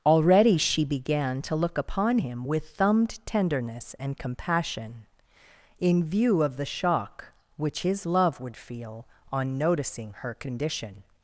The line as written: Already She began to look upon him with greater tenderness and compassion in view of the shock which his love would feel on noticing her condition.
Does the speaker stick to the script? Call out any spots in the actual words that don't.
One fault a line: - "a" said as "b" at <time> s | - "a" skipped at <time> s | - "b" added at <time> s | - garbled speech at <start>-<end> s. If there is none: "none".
- "greater" said as "thumbed" at 2.7 s